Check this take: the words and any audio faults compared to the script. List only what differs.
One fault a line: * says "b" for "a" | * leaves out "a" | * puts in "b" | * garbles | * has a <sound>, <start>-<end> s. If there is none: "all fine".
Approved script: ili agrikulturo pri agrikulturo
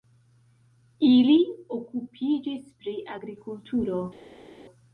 * says "okupiĝis" for "agrikulturo"